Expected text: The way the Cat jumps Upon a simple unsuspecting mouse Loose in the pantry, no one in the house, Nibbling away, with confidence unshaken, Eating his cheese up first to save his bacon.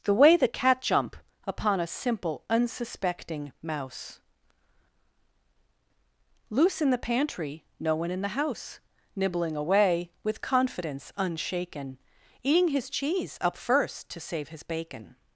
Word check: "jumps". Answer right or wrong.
wrong